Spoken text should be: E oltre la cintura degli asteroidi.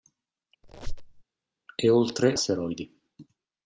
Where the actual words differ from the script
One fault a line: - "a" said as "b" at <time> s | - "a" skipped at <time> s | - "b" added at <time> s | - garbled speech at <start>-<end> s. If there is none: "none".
- "la cintura degli" skipped at 2.4 s